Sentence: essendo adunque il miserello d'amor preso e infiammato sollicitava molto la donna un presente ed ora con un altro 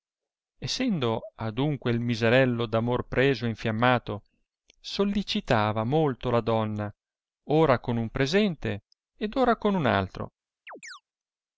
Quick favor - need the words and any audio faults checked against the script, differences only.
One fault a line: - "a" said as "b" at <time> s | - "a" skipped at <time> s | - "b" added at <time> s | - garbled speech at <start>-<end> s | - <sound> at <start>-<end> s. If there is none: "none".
- "ora con" added at 7.5 s
- chirp at 10.7-11.0 s